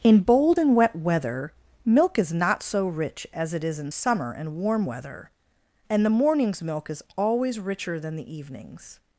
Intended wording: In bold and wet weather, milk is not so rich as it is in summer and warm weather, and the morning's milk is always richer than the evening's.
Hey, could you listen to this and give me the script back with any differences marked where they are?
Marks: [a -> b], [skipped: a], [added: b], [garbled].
In bold and wet weather, milk is not so rich as it is in summer and warm weather, and the morning's milk is always richer than the evening's.